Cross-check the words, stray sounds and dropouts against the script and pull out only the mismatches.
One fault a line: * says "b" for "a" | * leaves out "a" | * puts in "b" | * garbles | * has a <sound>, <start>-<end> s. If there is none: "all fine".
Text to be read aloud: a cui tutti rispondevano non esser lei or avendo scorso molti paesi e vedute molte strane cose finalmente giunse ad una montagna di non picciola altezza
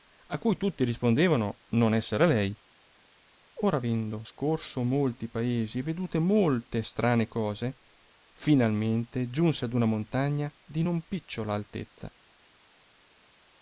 all fine